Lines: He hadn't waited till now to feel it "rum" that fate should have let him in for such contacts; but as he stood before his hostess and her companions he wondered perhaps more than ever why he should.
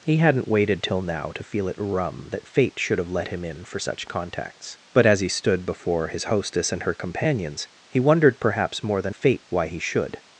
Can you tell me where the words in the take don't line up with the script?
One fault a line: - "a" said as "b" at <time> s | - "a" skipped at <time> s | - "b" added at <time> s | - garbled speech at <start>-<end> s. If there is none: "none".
- "ever" said as "fate" at 9.1 s